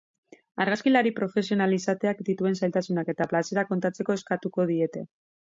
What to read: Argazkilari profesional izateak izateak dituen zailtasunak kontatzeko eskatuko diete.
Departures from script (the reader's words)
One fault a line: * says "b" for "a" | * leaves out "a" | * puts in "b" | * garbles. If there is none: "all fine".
* leaves out "izateak"
* puts in "eta plazerak"